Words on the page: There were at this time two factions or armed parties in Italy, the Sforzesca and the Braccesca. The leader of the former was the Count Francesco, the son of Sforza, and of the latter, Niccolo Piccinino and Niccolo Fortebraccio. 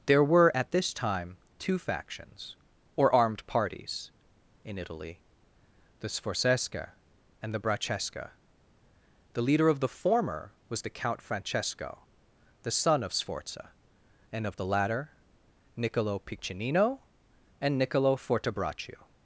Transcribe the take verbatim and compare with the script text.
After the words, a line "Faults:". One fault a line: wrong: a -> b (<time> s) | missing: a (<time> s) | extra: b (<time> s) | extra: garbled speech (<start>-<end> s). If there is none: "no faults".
There were at this time two factions or armed parties in Italy, the Sforzesca and the Braccesca. The leader of the former was the Count Francesco, the son of Sforza, and of the latter, Niccolo Piccinino and Niccolo Fortebraccio.
Faults:
no faults